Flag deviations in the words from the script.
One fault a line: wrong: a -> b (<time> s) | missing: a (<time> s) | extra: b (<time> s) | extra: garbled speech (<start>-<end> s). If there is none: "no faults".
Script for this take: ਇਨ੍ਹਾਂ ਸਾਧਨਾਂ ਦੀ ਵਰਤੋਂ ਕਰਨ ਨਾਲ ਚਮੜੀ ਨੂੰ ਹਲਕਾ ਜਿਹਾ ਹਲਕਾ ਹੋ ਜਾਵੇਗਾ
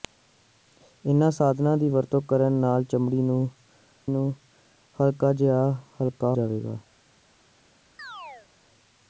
extra: ਨੂੰ (4.1 s)
missing: ਹੋ (6.3 s)